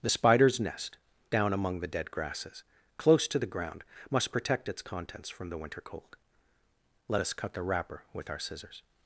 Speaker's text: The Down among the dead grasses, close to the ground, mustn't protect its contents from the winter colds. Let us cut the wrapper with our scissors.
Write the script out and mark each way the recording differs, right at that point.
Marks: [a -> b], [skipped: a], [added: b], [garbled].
The [added: Spider's nest] Down among the dead grasses, close to the ground, [mustn't -> must] protect its contents from the winter [colds. -> cold] Let us cut the wrapper with our scissors.